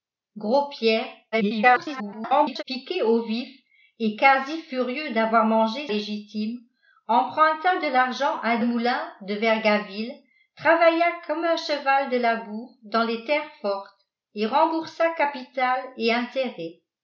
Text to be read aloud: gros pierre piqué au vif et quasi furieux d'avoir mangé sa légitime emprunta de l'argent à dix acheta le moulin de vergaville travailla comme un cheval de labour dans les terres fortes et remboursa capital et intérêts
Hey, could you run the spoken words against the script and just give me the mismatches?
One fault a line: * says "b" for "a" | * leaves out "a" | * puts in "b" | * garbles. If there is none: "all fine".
* garbles
* leaves out "sa"
* leaves out "dix acheta"